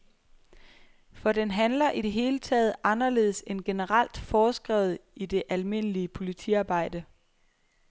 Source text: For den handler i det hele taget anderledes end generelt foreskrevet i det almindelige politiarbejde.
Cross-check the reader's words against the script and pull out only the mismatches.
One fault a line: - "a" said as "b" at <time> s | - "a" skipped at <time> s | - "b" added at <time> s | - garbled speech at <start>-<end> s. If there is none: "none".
none